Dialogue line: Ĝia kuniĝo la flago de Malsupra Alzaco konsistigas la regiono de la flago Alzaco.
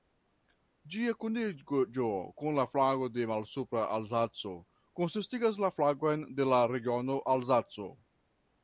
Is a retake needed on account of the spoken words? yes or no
yes